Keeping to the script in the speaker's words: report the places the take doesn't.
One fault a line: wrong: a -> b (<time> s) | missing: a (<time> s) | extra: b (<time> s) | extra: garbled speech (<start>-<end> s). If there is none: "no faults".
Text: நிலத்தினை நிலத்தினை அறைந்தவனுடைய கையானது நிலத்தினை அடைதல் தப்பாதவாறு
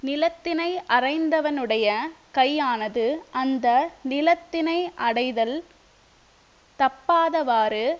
missing: நிலத்தினை (0.7 s)
extra: அந்த (3.3 s)